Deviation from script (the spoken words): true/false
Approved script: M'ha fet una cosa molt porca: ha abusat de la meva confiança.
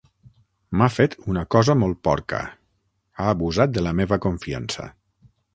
false